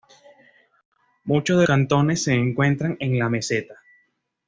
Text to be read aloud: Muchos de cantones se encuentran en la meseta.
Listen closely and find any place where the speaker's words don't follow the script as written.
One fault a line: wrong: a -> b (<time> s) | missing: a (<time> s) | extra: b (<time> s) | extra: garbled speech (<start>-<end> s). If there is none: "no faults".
no faults